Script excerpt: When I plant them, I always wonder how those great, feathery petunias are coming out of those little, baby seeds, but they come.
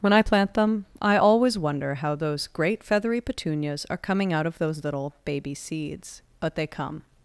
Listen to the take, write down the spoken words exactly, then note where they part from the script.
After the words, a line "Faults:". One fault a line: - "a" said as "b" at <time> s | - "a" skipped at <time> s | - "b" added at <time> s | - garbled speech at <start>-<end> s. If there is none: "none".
When I plant them, I always wonder how those great, feathery petunias are coming out of those little, baby seeds, but they come.
Faults:
none